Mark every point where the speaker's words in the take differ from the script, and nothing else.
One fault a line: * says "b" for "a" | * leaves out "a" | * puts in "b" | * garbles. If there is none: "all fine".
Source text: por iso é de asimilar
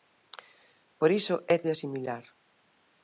all fine